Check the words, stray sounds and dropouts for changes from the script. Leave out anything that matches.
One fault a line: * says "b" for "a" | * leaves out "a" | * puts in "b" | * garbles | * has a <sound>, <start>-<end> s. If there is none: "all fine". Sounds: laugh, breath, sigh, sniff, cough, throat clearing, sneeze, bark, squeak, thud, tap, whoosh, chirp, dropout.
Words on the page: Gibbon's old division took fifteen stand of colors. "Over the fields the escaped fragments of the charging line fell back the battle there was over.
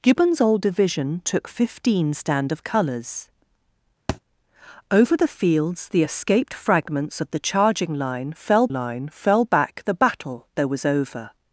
* has a thud, 4.1-4.2 s
* puts in "line fell"